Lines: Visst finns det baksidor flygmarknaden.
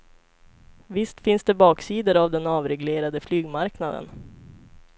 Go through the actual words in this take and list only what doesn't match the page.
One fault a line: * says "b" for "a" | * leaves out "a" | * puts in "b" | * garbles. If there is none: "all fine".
* puts in "av den avreglerade"